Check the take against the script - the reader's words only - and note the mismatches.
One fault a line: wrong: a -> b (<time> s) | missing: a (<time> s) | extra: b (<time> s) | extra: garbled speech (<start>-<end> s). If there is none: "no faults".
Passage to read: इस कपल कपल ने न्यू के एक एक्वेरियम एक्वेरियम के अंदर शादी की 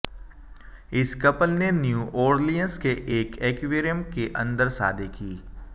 missing: कपल (1.5 s)
extra: ऑरलियंस (2.2 s)
missing: एक्वेरियम (4.0 s)